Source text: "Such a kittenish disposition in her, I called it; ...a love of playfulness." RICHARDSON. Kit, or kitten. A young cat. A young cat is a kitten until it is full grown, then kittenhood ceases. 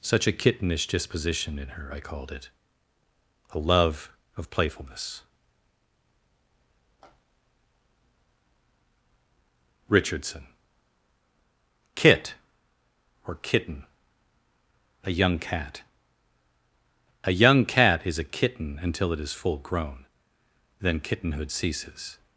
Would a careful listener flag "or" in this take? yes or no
no